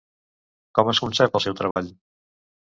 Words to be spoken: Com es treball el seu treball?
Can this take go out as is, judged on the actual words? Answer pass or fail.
fail